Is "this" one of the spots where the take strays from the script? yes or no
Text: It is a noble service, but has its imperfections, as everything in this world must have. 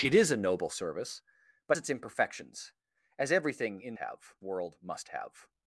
yes